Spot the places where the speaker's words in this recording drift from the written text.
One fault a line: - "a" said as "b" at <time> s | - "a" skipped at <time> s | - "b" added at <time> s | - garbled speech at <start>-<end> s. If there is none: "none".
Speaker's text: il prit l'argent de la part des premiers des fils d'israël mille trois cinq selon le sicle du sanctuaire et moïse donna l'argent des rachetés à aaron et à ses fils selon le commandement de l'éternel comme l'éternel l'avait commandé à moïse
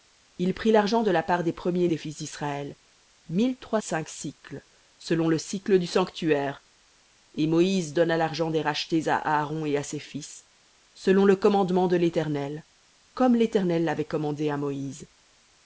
none